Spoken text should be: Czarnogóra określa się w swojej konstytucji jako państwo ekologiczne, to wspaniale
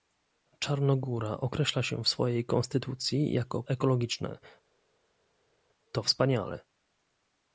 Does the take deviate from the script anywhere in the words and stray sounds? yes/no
yes